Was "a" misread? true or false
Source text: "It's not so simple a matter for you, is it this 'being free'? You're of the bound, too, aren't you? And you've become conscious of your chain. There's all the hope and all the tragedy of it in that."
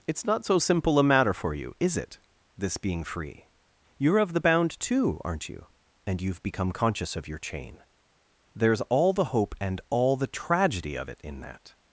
false